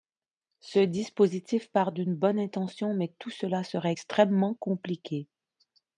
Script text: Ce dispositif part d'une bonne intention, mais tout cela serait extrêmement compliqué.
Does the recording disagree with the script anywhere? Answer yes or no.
no